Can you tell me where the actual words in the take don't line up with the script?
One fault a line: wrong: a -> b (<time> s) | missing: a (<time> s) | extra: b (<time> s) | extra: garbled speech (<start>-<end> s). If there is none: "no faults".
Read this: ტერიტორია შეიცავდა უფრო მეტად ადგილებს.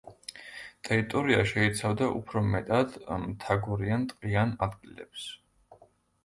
extra: მთაგორიან ტყიან (3.2 s)